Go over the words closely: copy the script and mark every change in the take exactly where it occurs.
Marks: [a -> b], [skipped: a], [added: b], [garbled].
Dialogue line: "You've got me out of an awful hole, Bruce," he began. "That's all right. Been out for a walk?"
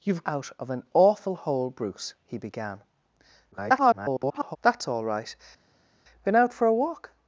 "You've [skipped: got me] out of an awful hole, Bruce," he began. [garbled] "That's all right. Been out for a walk?"